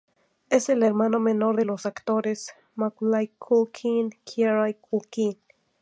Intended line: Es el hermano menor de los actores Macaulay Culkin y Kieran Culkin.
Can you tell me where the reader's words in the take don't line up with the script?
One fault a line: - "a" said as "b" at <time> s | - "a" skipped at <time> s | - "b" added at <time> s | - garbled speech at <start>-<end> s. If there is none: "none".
none